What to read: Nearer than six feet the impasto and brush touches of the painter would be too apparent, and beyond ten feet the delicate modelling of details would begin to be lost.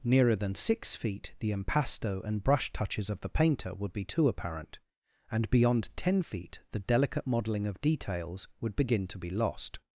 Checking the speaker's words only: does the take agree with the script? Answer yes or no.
yes